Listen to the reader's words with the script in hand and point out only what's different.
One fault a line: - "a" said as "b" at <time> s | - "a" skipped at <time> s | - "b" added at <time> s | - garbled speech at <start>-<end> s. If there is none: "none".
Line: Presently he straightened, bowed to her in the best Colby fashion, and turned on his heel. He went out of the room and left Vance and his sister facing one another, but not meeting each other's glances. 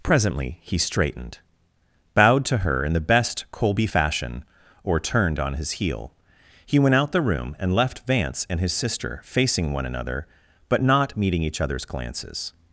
- "and" said as "or" at 4.8 s
- "of" skipped at 7.1 s